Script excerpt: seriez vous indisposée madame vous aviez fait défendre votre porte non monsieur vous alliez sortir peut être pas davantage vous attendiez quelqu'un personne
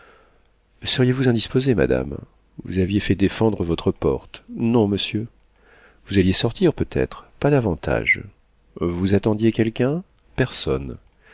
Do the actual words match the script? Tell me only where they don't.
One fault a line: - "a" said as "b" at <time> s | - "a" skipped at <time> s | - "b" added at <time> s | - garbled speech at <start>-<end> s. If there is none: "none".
none